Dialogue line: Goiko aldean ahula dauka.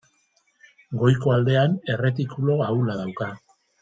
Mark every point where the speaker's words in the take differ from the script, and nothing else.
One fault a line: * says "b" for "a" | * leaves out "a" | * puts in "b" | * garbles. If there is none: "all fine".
* puts in "erretikulu"